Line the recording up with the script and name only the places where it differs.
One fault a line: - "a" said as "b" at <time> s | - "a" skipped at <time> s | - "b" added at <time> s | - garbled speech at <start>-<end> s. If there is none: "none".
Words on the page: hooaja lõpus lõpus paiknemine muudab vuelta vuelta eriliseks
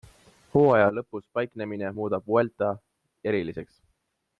- "lõpus" skipped at 1.3 s
- "vuelta" skipped at 2.7 s